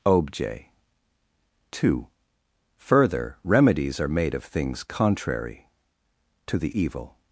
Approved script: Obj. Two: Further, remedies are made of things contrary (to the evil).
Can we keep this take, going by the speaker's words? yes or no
yes